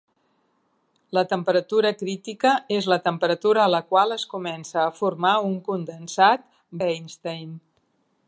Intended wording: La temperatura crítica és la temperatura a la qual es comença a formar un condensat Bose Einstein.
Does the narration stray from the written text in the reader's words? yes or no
yes